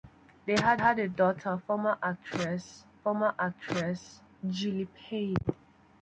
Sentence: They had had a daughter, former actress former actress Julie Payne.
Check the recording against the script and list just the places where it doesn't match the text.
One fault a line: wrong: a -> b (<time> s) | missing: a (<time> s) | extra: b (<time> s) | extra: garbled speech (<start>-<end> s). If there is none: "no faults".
no faults